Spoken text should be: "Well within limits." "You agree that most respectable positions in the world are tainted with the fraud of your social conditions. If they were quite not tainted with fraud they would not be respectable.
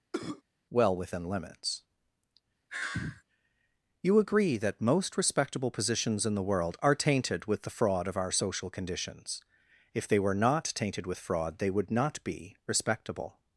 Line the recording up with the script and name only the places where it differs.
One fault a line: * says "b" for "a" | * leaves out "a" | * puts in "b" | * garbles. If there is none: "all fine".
* says "our" for "your"
* leaves out "quite"